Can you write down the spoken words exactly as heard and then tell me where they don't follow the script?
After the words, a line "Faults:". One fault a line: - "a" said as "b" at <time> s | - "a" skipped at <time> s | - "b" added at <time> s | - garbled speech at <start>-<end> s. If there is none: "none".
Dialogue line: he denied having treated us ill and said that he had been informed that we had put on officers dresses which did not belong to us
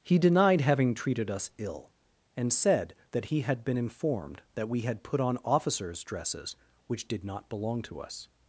he denied having treated us ill and said that he had been informed that we had put on officers dresses which did not belong to us
Faults:
none